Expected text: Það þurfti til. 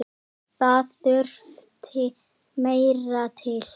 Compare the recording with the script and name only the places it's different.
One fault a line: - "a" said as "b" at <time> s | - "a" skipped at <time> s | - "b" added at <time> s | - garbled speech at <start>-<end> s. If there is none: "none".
- "meira" added at 2.7 s